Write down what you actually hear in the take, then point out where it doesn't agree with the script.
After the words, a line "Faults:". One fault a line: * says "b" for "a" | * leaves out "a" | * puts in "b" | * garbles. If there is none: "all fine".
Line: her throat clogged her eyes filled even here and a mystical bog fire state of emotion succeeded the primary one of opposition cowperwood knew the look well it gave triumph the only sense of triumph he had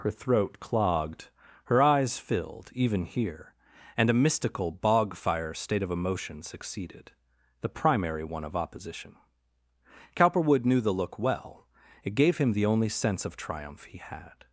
her throat clogged her eyes filled even here and a mystical bog fire state of emotion succeeded the primary one of opposition cowperwood knew the look well it gave him the only sense of triumph he had
Faults:
* says "him" for "triumph"